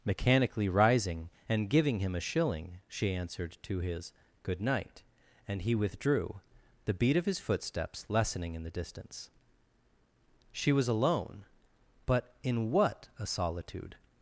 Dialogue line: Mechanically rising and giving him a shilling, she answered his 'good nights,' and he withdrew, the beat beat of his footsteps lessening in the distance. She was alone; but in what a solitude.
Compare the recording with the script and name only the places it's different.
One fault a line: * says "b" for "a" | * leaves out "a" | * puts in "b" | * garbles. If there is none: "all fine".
* puts in "to"
* says "night" for "nights"
* leaves out "beat"